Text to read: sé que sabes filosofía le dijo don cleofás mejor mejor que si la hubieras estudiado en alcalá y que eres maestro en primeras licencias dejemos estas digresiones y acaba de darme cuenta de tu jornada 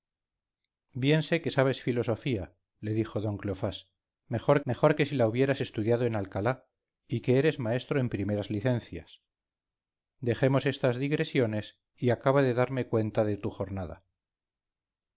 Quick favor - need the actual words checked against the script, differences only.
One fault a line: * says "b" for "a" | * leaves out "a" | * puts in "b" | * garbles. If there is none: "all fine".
all fine